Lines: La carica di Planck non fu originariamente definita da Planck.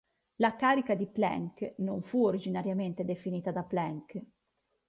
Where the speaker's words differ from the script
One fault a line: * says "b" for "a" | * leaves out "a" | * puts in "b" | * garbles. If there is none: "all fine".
all fine